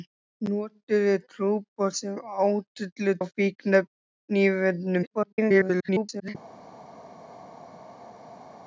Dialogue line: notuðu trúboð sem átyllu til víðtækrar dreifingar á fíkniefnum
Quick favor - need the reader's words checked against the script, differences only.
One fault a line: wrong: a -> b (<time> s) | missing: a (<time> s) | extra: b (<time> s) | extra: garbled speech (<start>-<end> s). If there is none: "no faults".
missing: til víðtækrar dreifingar (3.1 s)
extra: garbled speech (5.0-6.4 s)